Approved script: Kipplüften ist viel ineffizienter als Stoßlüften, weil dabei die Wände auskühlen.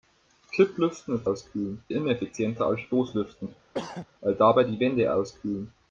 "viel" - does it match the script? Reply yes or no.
no